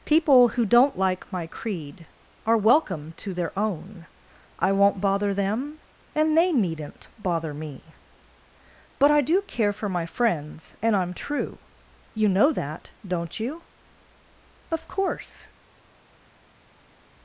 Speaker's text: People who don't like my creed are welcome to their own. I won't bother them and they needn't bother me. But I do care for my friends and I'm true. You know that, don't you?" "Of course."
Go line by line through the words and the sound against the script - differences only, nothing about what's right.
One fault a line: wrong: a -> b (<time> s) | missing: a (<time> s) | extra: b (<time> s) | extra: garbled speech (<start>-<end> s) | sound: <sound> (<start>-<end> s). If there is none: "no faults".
no faults